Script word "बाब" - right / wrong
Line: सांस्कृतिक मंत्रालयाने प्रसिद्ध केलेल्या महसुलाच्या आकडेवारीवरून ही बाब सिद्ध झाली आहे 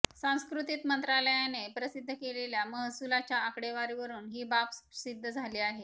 right